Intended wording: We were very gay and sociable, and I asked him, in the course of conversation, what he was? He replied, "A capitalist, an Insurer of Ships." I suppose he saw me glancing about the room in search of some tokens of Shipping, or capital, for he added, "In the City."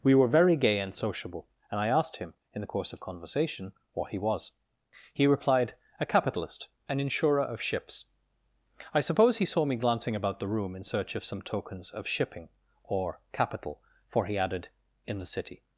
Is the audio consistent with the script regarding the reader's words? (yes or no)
yes